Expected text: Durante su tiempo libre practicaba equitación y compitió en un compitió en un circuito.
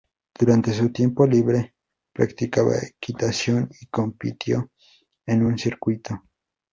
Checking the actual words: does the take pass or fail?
fail